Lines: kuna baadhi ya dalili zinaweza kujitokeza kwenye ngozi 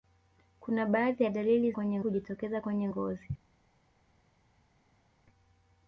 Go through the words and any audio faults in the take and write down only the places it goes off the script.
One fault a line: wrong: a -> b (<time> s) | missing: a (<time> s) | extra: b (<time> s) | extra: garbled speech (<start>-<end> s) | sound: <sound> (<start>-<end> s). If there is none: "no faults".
wrong: zinaweza -> kwenye (1.7 s)